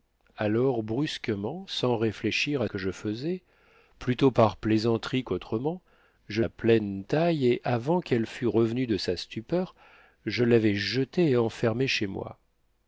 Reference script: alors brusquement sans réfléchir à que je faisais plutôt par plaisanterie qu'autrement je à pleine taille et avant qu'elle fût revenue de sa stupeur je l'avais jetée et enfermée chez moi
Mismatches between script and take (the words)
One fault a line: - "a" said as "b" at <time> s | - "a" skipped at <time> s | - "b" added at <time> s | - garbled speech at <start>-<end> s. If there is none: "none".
none